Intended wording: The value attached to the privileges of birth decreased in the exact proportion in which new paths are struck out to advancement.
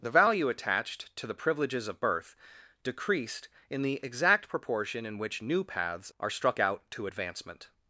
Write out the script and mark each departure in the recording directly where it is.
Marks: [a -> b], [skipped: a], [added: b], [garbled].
The value attached to the privileges of birth decreased in the exact proportion in which new paths are struck out to advancement.